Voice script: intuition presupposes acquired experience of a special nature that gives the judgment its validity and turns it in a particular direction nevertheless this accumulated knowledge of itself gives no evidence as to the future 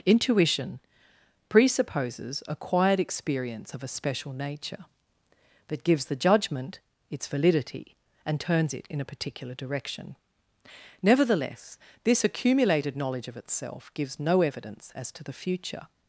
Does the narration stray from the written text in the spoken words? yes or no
no